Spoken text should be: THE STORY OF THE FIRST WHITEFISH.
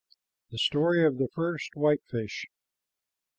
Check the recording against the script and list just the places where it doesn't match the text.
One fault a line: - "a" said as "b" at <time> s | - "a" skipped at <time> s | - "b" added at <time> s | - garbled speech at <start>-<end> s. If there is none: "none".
none